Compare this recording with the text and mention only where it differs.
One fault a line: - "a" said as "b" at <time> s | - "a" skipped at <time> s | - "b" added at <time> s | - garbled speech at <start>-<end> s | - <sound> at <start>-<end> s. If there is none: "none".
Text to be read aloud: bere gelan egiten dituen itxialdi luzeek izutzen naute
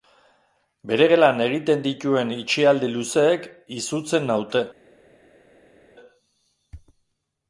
none